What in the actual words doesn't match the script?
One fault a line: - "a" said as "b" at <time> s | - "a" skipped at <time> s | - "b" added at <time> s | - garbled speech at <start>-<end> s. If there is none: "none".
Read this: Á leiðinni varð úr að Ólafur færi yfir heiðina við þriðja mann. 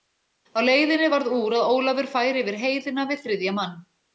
none